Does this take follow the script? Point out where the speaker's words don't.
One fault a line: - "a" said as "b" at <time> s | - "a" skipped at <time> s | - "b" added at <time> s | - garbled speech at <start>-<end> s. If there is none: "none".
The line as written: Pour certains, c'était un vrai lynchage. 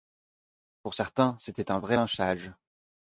none